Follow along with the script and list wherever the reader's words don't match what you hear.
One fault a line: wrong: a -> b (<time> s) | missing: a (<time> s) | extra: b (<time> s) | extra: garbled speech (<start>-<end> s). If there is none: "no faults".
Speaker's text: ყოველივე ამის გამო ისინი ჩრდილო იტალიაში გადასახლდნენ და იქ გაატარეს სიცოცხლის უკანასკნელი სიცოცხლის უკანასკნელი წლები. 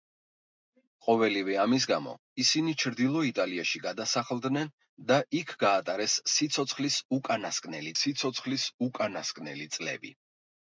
no faults